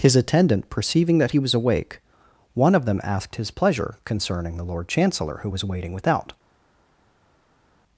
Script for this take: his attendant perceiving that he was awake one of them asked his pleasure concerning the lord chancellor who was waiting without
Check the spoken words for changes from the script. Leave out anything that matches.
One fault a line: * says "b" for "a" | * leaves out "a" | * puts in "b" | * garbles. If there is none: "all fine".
all fine